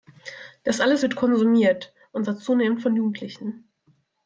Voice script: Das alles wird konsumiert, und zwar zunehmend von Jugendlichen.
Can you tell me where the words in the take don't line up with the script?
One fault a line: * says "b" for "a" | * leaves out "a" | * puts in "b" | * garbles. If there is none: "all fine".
all fine